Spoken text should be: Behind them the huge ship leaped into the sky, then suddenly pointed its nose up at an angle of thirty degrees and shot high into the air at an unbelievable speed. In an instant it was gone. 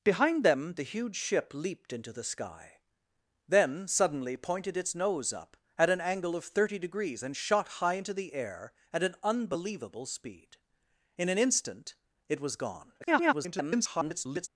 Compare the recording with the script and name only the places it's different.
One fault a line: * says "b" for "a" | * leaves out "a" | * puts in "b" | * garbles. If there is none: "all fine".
* garbles